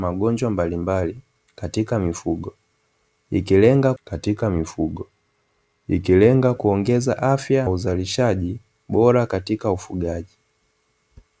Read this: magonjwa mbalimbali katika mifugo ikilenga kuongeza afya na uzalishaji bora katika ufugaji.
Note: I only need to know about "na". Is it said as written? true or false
false